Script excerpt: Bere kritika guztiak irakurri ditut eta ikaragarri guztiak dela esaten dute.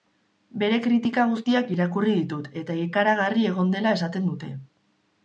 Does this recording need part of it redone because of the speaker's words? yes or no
yes